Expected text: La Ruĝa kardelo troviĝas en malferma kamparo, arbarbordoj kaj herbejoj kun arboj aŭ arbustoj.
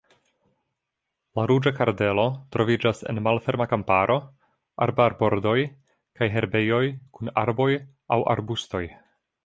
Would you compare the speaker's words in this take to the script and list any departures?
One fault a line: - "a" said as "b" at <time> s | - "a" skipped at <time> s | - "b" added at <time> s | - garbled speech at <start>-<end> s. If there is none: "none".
none